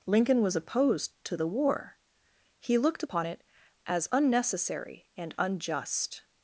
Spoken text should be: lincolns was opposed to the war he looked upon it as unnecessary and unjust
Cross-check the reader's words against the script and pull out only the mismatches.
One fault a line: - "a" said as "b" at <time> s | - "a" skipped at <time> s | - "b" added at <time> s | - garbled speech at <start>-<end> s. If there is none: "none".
- "lincolns" said as "lincoln" at 0.1 s